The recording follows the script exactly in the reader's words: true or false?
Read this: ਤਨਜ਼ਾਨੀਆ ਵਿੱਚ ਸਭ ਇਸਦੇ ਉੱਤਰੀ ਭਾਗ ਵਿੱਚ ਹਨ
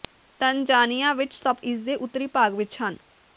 true